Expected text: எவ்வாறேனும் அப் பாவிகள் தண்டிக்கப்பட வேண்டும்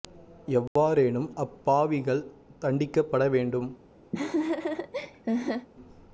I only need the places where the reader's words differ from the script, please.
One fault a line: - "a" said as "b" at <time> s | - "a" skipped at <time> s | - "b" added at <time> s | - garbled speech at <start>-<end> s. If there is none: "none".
none